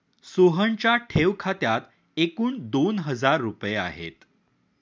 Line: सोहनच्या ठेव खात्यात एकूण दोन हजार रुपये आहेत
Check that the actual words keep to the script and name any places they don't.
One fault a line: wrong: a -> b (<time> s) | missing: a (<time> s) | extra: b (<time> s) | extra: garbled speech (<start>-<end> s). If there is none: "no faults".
no faults